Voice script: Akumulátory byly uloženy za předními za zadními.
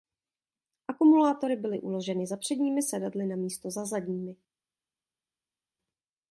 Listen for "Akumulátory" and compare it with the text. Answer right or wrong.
right